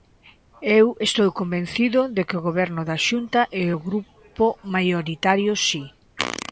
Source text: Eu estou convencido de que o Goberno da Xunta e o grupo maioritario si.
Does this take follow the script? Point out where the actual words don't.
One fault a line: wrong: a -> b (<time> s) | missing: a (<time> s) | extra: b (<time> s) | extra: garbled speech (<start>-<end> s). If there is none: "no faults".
no faults